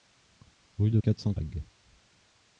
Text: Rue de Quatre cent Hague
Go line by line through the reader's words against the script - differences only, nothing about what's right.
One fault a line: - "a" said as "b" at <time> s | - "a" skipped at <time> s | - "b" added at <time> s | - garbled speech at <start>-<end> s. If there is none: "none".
none